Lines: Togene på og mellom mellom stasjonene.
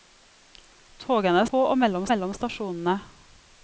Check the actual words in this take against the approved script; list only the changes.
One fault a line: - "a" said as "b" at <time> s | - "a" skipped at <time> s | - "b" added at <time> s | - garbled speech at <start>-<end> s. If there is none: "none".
none